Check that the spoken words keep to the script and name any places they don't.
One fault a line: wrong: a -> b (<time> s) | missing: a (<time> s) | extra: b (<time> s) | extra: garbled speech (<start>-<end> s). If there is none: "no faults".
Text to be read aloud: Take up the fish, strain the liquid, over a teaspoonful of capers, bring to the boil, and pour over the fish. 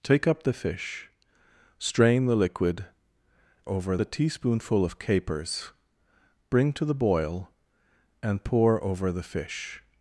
no faults